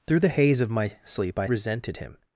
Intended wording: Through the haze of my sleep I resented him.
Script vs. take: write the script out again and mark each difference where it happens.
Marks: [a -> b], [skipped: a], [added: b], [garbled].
Through the haze of my sleep I resented him.